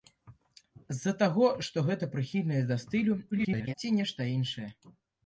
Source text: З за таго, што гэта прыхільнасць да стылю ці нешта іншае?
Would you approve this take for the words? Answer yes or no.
no